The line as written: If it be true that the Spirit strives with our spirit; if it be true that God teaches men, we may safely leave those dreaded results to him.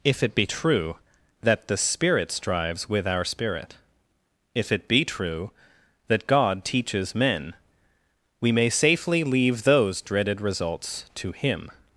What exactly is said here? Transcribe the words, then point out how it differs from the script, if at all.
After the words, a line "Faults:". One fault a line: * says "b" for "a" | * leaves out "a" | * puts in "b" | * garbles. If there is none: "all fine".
If it be true that the Spirit strives with our spirit; if it be true that God teaches men, we may safely leave those dreaded results to him.
Faults:
all fine